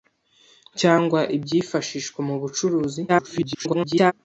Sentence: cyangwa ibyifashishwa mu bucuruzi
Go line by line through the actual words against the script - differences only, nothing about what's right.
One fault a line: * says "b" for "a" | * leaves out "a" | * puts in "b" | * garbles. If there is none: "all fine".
* garbles